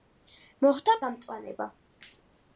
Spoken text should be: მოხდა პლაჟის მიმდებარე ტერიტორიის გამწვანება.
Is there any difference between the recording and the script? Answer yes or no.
yes